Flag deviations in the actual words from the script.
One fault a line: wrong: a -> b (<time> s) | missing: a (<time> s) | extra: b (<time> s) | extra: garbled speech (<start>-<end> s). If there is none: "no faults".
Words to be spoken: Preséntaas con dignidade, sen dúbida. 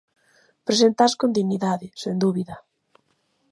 no faults